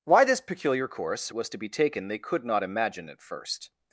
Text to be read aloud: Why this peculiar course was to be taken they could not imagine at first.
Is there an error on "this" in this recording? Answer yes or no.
no